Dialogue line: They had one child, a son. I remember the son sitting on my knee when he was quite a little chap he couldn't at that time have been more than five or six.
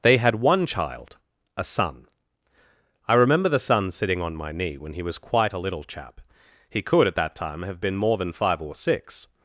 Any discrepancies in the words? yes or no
yes